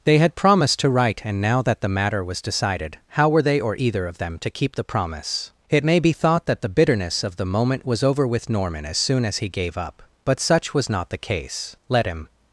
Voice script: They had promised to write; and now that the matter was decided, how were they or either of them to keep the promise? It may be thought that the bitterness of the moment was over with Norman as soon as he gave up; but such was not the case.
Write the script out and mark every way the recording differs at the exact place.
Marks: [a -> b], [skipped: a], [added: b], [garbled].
They had promised to write; and now that the matter was decided, how were they or either of them to keep the promise? It may be thought that the bitterness of the moment was over with Norman as soon as he gave up; but such was not the case. [added: Let him]